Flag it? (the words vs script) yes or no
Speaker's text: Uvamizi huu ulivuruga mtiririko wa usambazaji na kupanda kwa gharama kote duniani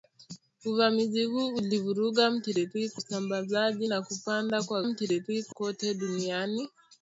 yes